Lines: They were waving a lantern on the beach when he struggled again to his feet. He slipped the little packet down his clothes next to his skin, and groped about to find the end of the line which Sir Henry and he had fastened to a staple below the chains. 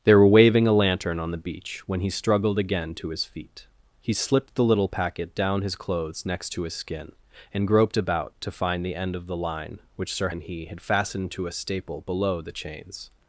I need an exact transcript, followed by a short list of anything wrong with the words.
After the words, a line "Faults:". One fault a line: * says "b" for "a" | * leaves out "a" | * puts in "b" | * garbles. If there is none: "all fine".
They were waving a lantern on the beach when he struggled again to his feet. He slipped the little packet down his clothes next to his skin, and groped about to find the end of the line which Sir And he had fastened to a staple below the chains.
Faults:
* leaves out "Henry"